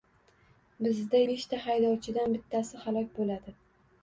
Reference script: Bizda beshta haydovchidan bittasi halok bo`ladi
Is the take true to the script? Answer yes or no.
yes